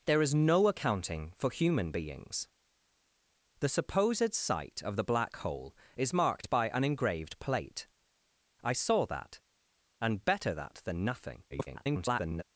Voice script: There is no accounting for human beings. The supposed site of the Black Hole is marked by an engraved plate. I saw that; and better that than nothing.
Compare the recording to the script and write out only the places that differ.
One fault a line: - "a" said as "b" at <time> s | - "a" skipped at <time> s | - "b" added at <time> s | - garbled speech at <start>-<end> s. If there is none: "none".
- garbled speech at 11.5-12.4 s